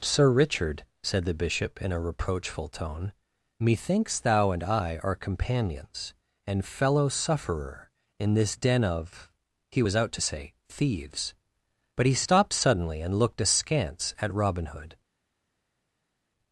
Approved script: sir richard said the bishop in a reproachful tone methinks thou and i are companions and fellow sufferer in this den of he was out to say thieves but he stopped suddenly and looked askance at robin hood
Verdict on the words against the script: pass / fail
pass